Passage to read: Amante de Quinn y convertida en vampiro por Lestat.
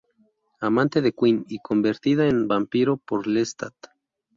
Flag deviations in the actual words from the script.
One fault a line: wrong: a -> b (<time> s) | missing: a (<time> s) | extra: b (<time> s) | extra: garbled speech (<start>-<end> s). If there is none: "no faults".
no faults